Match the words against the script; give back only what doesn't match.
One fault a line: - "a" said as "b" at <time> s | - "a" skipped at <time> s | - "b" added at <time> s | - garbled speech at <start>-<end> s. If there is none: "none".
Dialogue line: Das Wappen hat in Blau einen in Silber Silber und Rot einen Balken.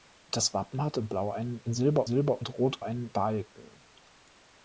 none